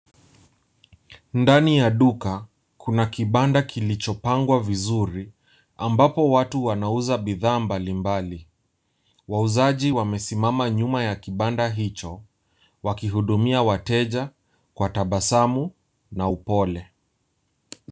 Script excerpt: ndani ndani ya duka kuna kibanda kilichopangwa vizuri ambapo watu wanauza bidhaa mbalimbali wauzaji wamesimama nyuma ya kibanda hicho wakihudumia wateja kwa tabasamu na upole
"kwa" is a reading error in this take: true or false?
false